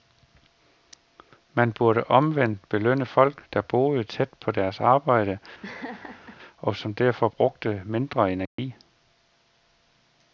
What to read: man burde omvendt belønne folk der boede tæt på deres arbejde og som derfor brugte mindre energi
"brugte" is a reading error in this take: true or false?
false